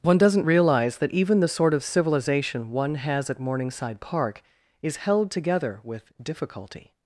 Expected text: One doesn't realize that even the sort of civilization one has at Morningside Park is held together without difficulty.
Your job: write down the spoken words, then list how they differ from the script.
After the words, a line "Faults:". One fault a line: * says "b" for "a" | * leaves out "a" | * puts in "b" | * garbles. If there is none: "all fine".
One doesn't realize that even the sort of civilization one has at Morningside Park is held together with difficulty.
Faults:
* says "with" for "without"